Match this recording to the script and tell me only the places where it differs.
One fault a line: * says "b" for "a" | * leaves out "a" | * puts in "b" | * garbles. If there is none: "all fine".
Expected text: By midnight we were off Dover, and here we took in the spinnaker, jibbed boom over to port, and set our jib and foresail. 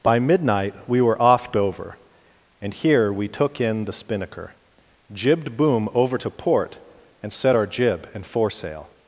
all fine